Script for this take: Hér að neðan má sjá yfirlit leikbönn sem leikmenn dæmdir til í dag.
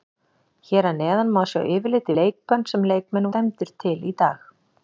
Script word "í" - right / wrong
right